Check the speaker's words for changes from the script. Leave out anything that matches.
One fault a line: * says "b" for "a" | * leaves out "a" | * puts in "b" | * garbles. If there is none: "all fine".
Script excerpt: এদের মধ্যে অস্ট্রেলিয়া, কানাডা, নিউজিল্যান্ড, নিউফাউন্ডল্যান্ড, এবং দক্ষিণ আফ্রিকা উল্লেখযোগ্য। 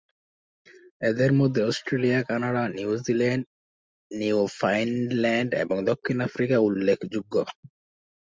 all fine